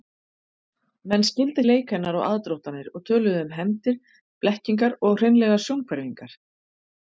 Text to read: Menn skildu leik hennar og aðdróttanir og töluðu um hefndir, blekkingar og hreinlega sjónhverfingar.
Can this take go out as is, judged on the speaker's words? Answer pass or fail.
pass